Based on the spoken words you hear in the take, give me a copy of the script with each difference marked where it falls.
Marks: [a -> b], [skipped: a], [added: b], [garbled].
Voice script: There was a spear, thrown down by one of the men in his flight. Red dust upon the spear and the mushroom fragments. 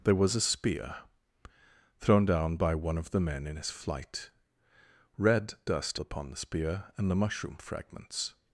There was a spear, thrown down by one of the men in his flight. Red dust upon the spear and the mushroom fragments.